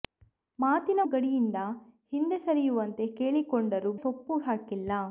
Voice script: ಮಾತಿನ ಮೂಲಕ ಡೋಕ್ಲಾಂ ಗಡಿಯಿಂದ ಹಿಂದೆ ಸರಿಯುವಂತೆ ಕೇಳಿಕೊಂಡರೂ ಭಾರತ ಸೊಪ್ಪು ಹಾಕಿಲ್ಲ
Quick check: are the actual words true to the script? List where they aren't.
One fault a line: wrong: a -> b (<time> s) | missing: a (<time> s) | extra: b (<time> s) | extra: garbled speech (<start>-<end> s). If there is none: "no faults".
missing: ಮೂಲಕ ಡೋಕ್ಲಾಂ (1.0 s)
missing: ಭಾರತ (3.9 s)